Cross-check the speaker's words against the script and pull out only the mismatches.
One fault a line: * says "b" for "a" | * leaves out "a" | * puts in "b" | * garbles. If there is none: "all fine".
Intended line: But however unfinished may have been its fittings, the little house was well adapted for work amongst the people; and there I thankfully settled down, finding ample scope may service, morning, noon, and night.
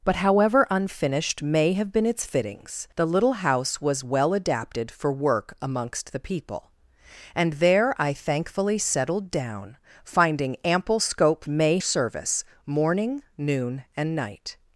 all fine